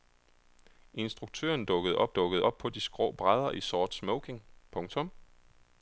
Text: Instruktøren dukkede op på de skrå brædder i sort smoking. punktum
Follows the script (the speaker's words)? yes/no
no